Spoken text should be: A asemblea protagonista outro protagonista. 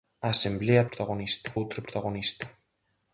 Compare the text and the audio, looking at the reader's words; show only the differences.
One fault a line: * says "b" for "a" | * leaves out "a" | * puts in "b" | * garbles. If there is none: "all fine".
all fine